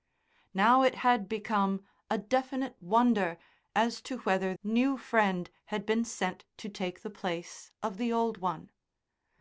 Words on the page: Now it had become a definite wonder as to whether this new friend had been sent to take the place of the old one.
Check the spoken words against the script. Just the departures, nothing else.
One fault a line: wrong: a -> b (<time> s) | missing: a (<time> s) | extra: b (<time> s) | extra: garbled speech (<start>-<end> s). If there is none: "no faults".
missing: this (4.5 s)